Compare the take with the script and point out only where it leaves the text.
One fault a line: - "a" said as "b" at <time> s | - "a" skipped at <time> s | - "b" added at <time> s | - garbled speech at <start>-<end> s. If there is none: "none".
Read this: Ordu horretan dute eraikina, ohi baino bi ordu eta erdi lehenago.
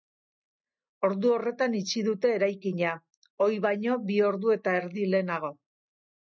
- "itxi" added at 1.8 s